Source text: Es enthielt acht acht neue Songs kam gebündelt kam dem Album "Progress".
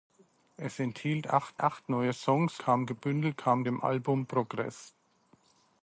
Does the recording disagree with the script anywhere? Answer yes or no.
no